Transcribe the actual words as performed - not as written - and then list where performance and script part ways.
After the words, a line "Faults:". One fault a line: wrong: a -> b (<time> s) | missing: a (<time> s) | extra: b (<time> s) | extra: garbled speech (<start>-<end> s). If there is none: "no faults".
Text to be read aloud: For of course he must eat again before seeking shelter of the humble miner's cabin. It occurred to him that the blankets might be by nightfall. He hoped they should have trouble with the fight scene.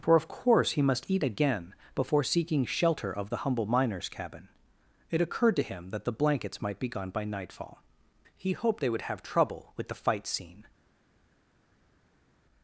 For of course he must eat again before seeking shelter of the humble miner's cabin. It occurred to him that the blankets might be gone by nightfall. He hoped they would have trouble with the fight scene.
Faults:
extra: gone (6.9 s)
wrong: should -> would (8.9 s)